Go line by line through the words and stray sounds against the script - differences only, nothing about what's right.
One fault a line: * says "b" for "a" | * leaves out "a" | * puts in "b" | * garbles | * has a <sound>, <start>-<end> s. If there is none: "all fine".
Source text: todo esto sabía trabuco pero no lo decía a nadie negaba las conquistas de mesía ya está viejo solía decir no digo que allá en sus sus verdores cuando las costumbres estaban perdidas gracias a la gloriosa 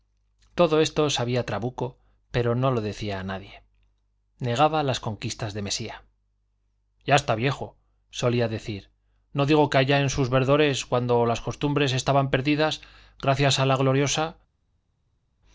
* leaves out "sus"